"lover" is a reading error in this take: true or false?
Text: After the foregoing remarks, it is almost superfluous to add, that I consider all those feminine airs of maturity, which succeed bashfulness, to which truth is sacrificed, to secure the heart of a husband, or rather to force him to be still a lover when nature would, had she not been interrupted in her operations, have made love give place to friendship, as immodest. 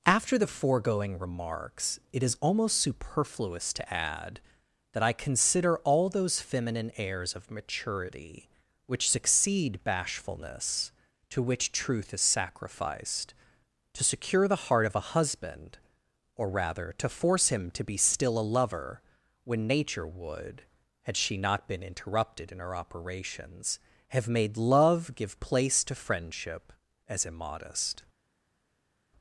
false